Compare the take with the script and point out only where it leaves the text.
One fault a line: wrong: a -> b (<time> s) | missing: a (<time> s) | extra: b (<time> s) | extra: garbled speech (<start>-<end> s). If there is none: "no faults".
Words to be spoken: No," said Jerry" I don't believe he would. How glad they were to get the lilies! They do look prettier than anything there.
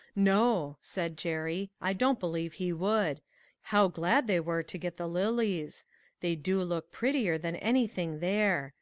no faults